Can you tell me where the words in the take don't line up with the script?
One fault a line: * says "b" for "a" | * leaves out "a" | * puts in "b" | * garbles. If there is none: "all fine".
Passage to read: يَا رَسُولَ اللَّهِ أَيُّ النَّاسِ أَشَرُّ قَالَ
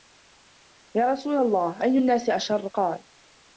all fine